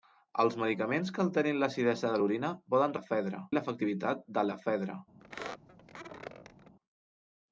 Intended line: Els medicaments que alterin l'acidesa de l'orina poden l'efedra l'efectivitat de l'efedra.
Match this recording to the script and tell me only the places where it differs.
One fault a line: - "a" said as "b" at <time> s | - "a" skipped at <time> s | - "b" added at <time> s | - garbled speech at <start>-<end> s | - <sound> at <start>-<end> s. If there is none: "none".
- squeak at 5.2-6.8 s